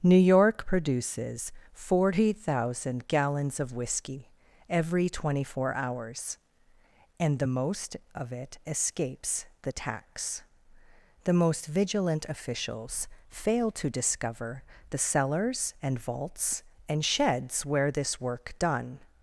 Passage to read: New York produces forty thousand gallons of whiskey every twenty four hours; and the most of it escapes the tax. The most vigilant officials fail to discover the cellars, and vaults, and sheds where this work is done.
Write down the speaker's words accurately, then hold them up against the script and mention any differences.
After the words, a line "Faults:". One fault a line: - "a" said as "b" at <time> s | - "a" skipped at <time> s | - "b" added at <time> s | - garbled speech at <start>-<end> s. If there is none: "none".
New York produces forty thousand gallons of whiskey every twenty four hours; and the most of it escapes the tax. The most vigilant officials fail to discover the cellars, and vaults, and sheds where this work done.
Faults:
- "is" skipped at 18.6 s